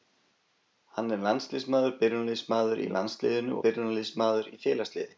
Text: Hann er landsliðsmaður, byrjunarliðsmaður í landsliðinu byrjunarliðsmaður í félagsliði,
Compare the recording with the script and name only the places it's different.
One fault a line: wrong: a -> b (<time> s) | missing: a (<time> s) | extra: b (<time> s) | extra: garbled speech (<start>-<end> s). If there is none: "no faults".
no faults